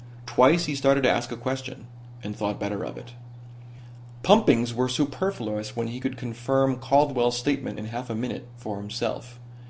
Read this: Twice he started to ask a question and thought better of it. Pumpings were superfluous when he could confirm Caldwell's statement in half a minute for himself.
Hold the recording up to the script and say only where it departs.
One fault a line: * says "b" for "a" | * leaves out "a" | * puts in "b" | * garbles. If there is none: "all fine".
all fine